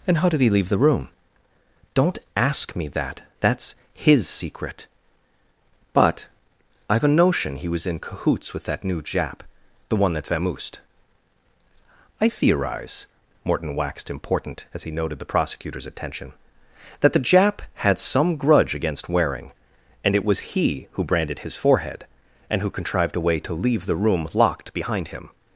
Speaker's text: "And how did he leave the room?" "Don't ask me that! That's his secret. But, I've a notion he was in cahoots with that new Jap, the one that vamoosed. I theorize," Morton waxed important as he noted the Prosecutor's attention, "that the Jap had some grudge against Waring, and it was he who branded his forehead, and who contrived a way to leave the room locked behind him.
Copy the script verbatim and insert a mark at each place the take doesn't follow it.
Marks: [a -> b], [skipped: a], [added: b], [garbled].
"And how did he leave the room?" "Don't ask me that! That's his secret. But, I've a notion he was in cahoots with that new Jap, the one that vamoosed. I theorize," Morton waxed important as he noted the Prosecutor's attention, "that the Jap had some grudge against Waring, and it was he who branded his forehead, and who contrived a way to leave the room locked behind him.